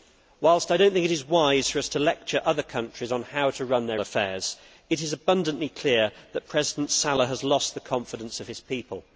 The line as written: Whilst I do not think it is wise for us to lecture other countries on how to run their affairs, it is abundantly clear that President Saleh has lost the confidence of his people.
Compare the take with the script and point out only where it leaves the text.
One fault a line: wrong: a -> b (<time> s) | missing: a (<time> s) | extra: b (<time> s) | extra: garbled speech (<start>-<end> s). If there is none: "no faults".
no faults